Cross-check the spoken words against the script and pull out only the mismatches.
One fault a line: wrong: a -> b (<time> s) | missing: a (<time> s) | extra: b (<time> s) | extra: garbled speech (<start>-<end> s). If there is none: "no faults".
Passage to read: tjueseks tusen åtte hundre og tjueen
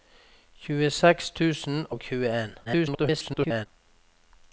missing: åtte hundre (1.8 s)
extra: garbled speech (2.6-3.7 s)